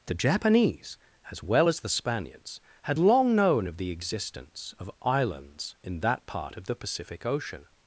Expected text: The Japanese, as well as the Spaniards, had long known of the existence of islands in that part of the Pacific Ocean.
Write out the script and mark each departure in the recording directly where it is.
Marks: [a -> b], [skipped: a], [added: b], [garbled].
The Japanese, as well as the Spaniards, had long known of the existence of islands in that part of the Pacific Ocean.